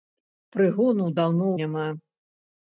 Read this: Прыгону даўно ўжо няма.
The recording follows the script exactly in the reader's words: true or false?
false